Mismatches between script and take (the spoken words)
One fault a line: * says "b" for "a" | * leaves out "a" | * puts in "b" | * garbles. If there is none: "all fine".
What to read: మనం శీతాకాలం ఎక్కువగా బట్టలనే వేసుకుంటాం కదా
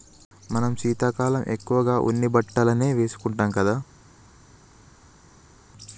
* puts in "ఉన్ని"